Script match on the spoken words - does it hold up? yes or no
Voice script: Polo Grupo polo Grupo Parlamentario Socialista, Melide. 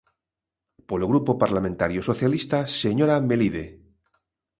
no